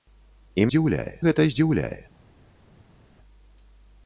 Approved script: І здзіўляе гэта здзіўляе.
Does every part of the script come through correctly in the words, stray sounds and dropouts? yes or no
yes